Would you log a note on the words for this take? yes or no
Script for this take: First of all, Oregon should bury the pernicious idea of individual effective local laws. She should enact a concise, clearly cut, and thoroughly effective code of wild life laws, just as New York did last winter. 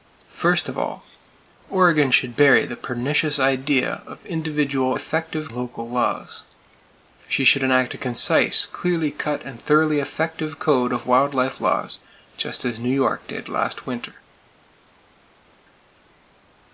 no